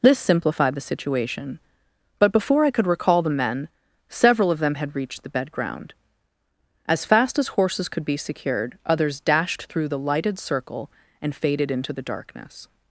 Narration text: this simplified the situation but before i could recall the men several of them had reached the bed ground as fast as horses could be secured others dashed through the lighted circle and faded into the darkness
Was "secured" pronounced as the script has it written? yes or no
yes